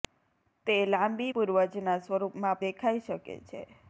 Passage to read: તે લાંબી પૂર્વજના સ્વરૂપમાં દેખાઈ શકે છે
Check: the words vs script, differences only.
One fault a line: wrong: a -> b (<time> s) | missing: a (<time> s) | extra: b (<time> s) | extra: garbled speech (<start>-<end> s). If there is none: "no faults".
no faults